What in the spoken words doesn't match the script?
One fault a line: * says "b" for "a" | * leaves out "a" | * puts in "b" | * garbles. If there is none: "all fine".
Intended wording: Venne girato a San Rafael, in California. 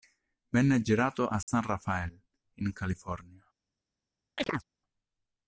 all fine